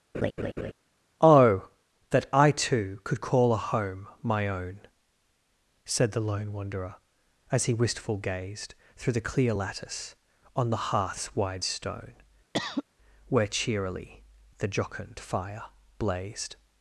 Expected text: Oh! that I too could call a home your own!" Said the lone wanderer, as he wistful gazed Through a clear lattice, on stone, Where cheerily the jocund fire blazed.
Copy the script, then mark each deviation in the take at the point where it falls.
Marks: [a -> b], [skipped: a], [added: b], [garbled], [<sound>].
[laugh] Oh! that I too could call a home [your -> my] own!" Said the lone wanderer, as he wistful gazed Through [a -> the] clear lattice, on [added: the hearth's wide] stone, [cough] Where cheerily the jocund fire blazed.